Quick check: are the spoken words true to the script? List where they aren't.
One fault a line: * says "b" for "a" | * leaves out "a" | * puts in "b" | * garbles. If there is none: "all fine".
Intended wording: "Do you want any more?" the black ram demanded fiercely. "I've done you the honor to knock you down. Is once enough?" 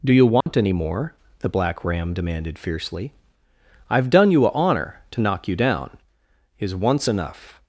* says "a" for "the"